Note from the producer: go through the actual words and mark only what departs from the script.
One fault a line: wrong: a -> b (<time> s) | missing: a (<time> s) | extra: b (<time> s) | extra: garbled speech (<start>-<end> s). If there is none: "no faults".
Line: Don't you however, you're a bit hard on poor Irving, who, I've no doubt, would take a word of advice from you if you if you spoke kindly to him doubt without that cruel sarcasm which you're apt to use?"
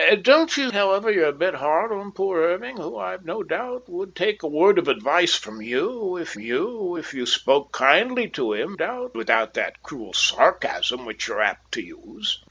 no faults